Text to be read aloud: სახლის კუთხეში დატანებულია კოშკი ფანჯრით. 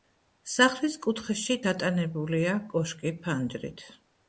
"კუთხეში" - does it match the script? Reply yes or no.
yes